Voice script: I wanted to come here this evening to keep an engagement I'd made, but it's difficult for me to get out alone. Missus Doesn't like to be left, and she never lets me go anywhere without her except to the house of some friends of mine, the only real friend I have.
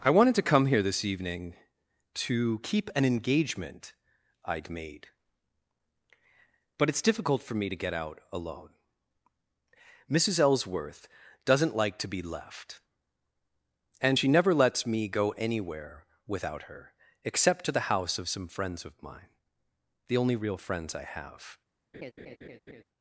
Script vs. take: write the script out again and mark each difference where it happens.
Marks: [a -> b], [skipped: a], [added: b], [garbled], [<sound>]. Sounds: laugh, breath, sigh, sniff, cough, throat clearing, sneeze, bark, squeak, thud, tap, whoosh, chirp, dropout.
I wanted to come here this evening to keep an engagement I'd made, but it's difficult for me to get out alone. Missus [added: Ellsworth] Doesn't like to be left, and she never lets me go anywhere without her except to the house of some friends of mine, the only real [friend -> friends] I have. [laugh]